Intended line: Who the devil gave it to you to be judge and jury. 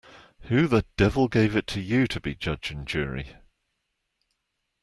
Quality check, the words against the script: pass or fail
pass